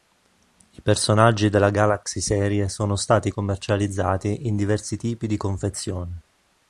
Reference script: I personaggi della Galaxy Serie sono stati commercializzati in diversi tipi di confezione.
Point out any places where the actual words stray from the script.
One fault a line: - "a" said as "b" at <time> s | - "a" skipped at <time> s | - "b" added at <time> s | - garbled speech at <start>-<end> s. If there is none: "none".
none